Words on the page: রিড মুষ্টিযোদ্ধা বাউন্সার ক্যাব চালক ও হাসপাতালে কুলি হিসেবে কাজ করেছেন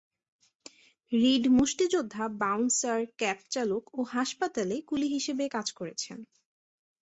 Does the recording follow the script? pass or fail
pass